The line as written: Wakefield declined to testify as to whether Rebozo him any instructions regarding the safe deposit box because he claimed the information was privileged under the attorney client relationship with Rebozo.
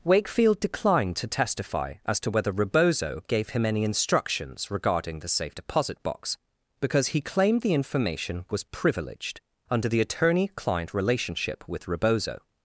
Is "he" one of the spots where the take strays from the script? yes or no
no